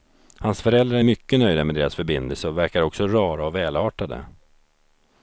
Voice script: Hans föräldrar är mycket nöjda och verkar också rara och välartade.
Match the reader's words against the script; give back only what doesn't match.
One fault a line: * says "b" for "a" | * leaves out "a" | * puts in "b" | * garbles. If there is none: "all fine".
* puts in "med deras förbindelse"